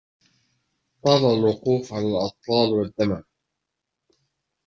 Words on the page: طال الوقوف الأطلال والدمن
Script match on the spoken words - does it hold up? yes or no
no